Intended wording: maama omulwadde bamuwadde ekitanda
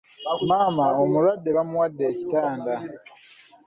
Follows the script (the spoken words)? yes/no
yes